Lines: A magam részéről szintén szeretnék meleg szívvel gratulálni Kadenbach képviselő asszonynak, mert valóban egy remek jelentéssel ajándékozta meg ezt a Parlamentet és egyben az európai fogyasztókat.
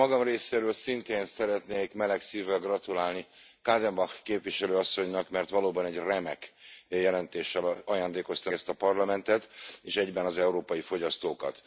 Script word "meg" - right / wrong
wrong